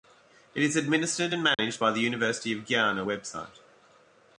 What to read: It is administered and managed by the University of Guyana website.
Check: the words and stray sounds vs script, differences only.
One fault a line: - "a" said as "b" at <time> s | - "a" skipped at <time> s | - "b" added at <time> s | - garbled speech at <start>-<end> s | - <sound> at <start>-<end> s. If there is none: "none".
- dropout at 1.5-1.6 s